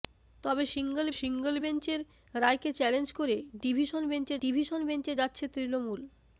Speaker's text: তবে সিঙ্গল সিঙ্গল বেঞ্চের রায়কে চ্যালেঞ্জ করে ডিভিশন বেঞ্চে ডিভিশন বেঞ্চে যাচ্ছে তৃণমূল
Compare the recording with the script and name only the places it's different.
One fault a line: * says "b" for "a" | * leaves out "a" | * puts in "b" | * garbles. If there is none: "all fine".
all fine